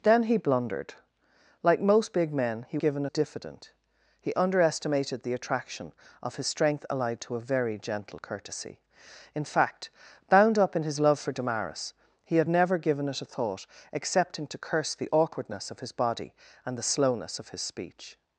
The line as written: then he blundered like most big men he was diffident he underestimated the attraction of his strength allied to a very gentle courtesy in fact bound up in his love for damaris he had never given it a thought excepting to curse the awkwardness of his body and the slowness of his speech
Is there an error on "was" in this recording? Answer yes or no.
yes